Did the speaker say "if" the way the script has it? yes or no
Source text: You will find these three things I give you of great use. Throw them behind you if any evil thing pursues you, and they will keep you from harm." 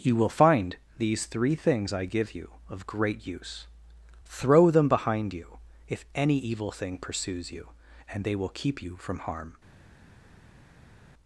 yes